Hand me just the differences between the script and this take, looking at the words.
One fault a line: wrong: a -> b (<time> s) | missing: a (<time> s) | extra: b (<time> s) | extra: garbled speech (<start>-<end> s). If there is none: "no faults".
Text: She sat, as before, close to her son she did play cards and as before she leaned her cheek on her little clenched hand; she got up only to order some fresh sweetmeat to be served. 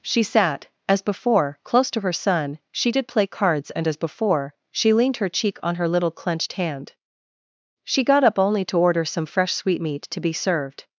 no faults